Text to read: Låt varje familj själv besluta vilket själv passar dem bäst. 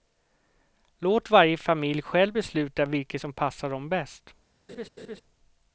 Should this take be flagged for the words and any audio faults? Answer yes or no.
yes